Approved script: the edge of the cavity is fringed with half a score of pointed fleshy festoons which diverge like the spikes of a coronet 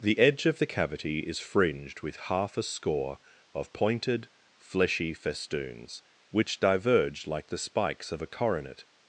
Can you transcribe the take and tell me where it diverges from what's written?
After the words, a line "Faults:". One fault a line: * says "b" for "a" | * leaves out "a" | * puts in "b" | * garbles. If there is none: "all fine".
the edge of the cavity is fringed with half a score of pointed fleshy festoons which diverge like the spikes of a coronet
Faults:
all fine